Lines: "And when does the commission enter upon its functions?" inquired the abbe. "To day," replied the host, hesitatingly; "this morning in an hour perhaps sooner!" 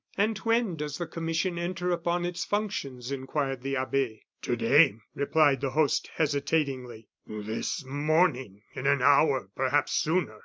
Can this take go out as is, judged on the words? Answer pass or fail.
pass